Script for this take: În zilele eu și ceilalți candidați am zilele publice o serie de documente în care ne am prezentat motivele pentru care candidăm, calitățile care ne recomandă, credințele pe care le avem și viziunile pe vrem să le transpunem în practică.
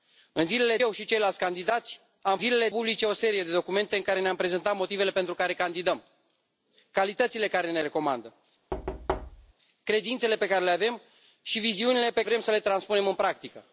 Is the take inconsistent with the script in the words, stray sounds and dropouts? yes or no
yes